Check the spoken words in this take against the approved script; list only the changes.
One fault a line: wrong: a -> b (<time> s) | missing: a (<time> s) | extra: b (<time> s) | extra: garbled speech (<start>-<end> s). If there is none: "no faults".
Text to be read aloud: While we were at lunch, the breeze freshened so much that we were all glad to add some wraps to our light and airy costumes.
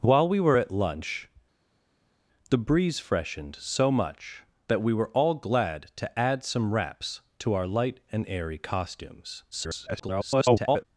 extra: garbled speech (9.5-10.8 s)